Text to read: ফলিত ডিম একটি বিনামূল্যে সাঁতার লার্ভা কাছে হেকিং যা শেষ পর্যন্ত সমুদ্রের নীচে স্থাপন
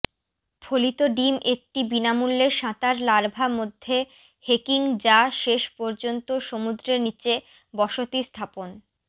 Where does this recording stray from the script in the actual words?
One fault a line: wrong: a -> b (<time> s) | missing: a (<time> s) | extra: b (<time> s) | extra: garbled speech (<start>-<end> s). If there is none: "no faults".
wrong: কাছে -> মধ্যে (3.6 s)
extra: বসতি (7.7 s)